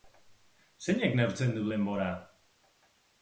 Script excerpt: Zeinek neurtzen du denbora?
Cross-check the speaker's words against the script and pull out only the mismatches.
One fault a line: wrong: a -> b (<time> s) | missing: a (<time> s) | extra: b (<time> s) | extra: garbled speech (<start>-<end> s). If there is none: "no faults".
no faults